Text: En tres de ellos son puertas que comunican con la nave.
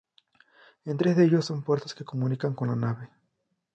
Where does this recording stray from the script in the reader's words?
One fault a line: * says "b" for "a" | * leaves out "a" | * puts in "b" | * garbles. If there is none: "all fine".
all fine